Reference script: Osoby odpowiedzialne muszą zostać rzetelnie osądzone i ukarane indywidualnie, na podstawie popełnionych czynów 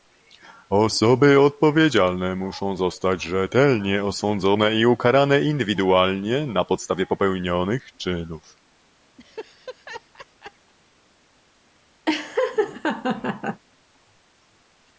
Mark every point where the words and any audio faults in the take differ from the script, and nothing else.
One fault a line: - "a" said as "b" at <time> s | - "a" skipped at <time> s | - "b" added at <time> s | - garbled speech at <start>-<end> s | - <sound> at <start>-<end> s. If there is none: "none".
- laugh at 9.2-10.7 s
- laugh at 12.1-13.6 s